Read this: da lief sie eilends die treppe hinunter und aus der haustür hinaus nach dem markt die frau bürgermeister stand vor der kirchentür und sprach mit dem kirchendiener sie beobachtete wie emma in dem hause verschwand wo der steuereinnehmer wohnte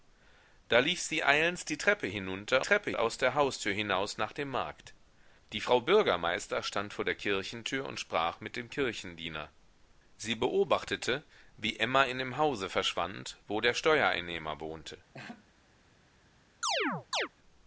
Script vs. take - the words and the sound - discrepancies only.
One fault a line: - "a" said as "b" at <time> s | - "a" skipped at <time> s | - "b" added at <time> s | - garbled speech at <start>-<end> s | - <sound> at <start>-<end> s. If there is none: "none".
- "und" said as "treppe" at 2.6 s
- laugh at 15.1-15.5 s
- chirp at 16.6-17.3 s